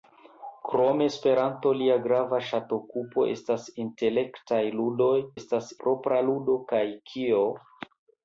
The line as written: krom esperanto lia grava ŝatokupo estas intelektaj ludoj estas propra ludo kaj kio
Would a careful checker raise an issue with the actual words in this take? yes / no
no